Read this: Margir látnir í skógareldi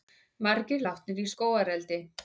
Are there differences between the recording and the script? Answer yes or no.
no